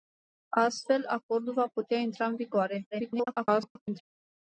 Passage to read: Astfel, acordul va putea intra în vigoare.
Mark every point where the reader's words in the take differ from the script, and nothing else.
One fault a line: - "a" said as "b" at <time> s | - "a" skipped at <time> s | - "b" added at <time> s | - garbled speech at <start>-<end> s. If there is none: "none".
- garbled speech at 2.9-4.0 s